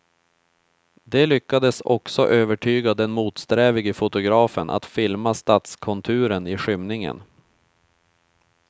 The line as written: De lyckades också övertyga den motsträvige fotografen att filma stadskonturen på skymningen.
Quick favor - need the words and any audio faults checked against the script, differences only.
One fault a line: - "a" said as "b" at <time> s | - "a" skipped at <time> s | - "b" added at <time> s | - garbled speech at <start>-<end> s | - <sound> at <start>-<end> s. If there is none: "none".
- "på" said as "i" at 6.5 s